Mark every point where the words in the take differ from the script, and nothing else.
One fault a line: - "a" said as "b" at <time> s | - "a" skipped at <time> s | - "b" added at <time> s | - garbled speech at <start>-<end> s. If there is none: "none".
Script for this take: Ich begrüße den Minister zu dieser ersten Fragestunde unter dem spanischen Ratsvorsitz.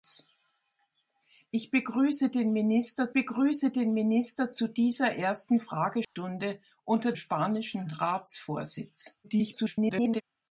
- "begrüße den Minister" added at 3.1 s
- "dem" skipped at 7.1 s
- garbled speech at 9.2-10.2 s